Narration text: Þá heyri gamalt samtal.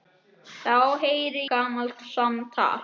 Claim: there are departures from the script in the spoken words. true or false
false